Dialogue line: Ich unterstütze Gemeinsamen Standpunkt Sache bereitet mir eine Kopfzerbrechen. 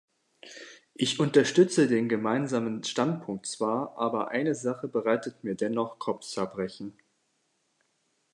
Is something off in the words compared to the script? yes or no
yes